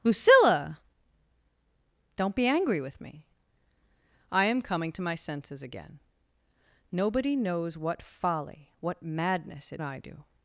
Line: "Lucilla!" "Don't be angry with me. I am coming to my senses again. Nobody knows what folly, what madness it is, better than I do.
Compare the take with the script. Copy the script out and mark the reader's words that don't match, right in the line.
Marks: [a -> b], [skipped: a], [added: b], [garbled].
"Lucilla!" "Don't be angry with me. I am coming to my senses again. Nobody knows what folly, what madness it [skipped: is, better than] I do.